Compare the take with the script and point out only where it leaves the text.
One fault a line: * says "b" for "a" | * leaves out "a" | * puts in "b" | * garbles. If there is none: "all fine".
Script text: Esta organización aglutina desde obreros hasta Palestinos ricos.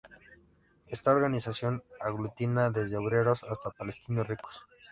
all fine